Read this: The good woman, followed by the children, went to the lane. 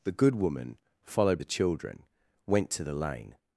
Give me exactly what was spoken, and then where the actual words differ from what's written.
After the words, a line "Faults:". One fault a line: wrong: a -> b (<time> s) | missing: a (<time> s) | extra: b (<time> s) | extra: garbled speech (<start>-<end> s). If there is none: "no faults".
The good woman, followed the children, went to the lane.
Faults:
missing: by (1.4 s)